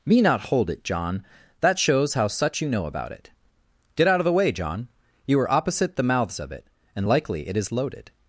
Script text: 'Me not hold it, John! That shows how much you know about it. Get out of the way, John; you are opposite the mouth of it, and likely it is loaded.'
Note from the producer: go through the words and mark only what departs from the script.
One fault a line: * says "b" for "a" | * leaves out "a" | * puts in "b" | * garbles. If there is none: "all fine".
* says "such" for "much"
* says "mouths" for "mouth"